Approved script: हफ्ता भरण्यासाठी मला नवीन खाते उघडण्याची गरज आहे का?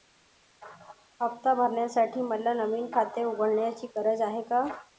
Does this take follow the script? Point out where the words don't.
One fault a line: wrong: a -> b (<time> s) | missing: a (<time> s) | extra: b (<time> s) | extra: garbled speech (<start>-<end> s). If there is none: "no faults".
no faults